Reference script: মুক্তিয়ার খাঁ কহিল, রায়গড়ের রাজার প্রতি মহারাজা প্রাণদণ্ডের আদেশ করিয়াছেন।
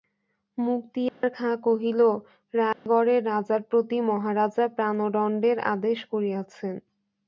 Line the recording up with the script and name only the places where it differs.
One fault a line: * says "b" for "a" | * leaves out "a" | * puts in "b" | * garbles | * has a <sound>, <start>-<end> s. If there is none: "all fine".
* has a dropout, 1.1-1.2 s
* has a dropout, 2.7-2.9 s